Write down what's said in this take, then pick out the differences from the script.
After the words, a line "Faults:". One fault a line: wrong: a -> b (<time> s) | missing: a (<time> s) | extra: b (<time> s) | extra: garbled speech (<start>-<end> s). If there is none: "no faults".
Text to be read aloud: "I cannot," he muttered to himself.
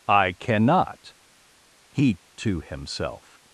"I cannot," he to himself.
Faults:
missing: muttered (2.2 s)